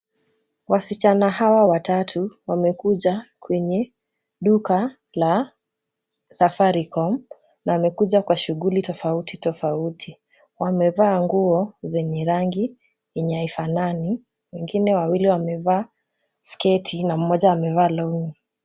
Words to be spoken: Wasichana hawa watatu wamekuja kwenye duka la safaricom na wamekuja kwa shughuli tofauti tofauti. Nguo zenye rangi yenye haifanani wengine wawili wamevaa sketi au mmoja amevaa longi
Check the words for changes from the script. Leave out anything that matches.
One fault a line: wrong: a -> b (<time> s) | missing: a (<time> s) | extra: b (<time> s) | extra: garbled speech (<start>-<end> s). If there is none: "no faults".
extra: Wamevaa (10.6 s)
wrong: au -> na (17.0 s)